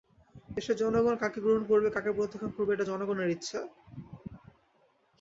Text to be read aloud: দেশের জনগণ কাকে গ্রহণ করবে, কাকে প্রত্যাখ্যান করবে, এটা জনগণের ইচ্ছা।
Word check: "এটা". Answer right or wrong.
right